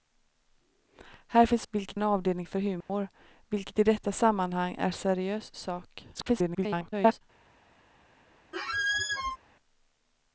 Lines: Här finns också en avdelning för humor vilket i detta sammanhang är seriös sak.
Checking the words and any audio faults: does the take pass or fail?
fail